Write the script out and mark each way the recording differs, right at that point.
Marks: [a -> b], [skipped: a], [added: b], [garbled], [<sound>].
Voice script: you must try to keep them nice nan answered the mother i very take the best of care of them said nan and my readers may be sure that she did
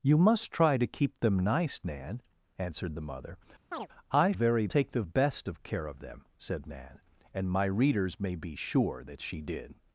you must try to keep them nice nan answered the mother [chirp] i very take the best of care of them said nan and my readers may be sure that she did